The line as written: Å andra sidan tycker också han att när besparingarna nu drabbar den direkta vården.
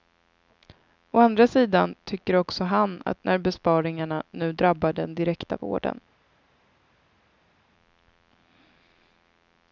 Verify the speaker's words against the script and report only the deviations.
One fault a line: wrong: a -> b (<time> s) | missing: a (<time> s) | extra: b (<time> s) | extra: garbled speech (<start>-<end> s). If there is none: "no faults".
no faults